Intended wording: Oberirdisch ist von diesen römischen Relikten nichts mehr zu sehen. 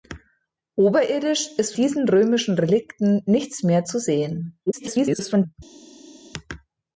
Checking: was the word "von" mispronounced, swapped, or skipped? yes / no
yes